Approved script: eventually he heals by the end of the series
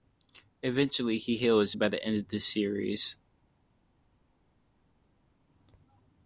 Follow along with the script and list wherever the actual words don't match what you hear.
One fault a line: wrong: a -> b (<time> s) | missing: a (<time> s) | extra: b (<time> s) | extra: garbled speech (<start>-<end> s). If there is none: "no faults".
no faults